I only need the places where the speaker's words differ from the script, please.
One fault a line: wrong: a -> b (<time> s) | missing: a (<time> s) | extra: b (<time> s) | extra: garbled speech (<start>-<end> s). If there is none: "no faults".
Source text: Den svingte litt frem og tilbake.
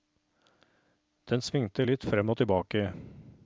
no faults